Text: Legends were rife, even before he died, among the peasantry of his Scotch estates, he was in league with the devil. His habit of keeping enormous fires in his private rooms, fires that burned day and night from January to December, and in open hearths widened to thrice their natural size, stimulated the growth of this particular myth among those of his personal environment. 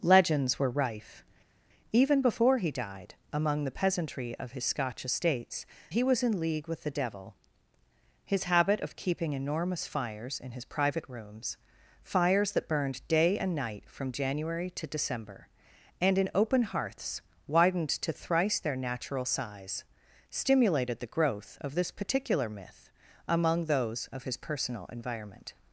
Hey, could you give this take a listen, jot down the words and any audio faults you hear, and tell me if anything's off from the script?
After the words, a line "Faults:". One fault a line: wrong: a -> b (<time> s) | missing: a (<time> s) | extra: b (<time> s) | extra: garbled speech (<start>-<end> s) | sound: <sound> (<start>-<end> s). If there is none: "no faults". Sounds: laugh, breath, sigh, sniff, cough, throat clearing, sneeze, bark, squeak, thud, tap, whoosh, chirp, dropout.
Legends were rife, even before he died, among the peasantry of his Scotch estates, he was in league with the devil. His habit of keeping enormous fires in his private rooms, fires that burned day and night from January to December, and in open hearths widened to thrice their natural size, stimulated the growth of this particular myth among those of his personal environment.
Faults:
no faults